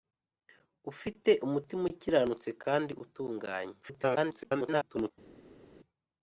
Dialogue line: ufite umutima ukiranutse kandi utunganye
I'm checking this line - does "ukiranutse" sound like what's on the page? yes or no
yes